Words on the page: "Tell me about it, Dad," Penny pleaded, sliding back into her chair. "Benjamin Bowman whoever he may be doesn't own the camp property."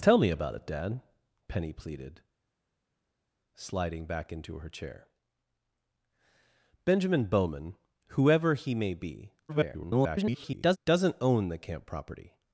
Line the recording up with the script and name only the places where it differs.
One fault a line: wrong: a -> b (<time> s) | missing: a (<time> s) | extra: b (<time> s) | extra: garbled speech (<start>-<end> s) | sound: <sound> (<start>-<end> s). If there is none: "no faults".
extra: garbled speech (9.5-10.8 s)